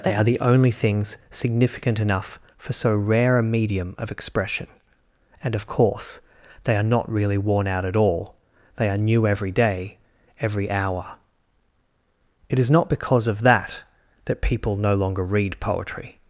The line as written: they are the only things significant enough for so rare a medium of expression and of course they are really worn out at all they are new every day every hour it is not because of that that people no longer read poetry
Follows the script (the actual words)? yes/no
no